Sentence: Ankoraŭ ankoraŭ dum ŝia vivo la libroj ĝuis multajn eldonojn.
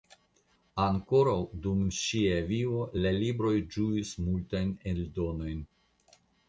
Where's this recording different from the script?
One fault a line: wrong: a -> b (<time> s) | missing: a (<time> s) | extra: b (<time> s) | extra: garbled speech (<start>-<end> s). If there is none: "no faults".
missing: ankoraŭ (1.4 s)